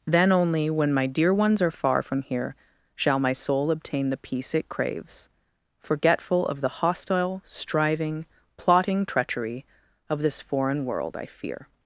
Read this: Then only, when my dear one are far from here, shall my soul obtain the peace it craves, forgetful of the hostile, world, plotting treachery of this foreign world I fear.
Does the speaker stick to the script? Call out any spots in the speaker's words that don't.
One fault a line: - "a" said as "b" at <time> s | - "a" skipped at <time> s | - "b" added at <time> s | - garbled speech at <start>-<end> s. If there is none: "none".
- "one" said as "ones" at 1.3 s
- "world" said as "striving" at 7.5 s